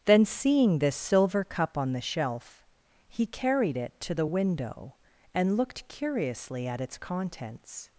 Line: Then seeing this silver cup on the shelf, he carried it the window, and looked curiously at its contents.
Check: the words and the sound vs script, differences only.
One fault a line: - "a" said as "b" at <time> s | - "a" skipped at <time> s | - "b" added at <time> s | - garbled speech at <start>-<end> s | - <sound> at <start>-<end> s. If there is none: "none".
- "to" added at 4.0 s